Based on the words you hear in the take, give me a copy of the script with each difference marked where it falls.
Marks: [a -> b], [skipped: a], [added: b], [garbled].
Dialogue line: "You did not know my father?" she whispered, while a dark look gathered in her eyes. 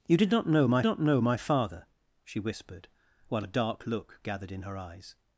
"You did not know my [added: not know my] father?" she whispered, while a dark look gathered in her eyes.